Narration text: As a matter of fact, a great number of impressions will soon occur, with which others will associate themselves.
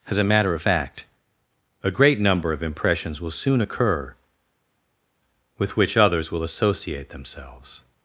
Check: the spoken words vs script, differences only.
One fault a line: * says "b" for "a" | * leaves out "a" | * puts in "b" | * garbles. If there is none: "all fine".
all fine